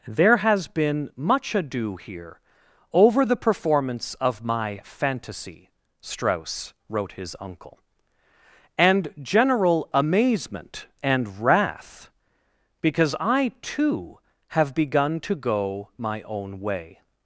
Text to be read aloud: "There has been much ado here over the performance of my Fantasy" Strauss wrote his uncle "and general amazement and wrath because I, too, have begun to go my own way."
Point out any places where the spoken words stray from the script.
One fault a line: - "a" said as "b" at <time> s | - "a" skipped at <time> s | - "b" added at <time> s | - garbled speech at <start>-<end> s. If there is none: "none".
none